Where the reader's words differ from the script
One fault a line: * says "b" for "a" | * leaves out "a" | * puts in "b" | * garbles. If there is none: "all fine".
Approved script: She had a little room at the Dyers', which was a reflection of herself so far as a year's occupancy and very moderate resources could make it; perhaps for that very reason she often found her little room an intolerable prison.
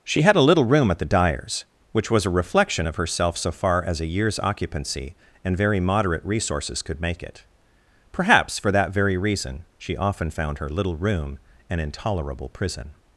all fine